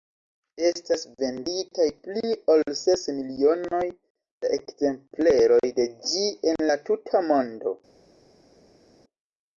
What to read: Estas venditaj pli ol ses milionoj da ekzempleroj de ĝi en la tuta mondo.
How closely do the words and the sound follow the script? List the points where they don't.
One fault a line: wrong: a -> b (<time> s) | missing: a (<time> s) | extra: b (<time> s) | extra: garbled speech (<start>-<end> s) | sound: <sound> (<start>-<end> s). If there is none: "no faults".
no faults